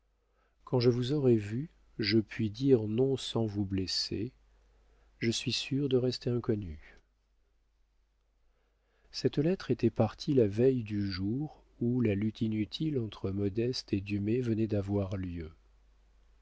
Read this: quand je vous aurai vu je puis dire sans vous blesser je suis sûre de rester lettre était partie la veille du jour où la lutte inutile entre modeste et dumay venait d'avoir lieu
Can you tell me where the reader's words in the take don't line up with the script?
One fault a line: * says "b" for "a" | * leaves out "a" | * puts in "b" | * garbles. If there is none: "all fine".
* puts in "non"
* puts in "inconnue cette"